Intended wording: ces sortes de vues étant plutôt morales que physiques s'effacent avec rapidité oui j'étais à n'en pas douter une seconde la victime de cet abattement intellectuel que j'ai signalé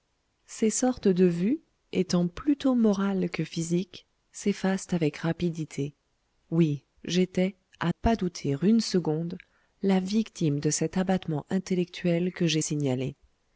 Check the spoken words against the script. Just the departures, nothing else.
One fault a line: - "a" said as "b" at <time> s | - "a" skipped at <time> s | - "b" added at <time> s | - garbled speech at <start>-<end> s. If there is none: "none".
- "n'en" skipped at 7.9 s